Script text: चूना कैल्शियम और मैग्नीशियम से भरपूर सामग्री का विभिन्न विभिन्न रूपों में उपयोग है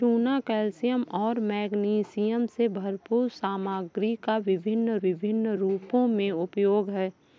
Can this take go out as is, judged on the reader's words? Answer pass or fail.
pass